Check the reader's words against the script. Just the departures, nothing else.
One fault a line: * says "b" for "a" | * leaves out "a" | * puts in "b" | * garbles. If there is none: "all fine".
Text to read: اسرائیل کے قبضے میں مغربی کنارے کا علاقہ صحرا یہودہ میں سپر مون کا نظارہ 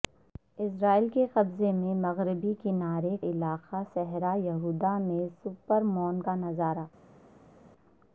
* leaves out "کا"